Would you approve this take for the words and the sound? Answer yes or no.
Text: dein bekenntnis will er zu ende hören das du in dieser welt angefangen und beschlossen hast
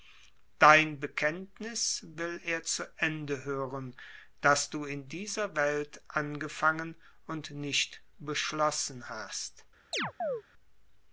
no